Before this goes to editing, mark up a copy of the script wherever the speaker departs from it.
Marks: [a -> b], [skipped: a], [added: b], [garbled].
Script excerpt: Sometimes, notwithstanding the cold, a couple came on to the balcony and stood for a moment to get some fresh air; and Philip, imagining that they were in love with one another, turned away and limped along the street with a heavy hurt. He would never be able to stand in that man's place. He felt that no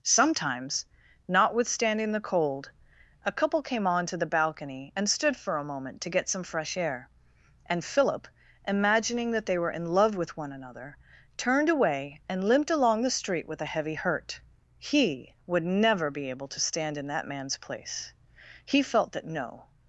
Sometimes, notwithstanding the cold, a couple came on to the balcony and stood for a moment to get some fresh air; and Philip, imagining that they were in love with one another, turned away and limped along the street with a heavy hurt. He would never be able to stand in that man's place. He felt that no